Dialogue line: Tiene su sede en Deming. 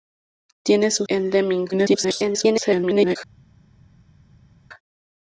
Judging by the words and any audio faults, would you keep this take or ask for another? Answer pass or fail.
fail